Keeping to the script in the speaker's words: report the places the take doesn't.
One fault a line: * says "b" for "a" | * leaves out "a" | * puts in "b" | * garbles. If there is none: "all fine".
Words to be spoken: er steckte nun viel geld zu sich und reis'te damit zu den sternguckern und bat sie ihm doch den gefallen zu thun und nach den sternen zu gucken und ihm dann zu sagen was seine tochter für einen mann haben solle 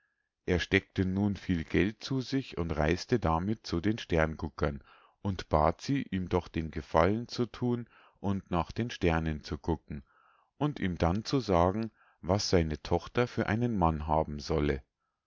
all fine